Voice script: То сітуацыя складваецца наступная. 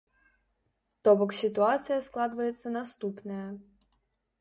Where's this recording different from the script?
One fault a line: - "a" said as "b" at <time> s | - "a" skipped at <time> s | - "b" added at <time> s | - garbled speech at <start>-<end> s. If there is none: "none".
- "бок" added at 1.2 s